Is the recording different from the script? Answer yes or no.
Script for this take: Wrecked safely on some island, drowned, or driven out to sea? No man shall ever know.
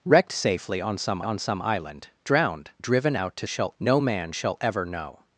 yes